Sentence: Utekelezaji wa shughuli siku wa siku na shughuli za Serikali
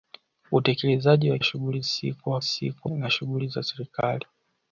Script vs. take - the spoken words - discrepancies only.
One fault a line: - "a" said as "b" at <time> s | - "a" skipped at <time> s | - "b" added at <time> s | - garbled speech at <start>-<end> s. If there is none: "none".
none